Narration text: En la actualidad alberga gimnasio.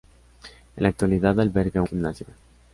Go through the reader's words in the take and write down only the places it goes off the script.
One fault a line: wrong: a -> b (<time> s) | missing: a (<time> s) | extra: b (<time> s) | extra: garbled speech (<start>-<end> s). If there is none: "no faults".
no faults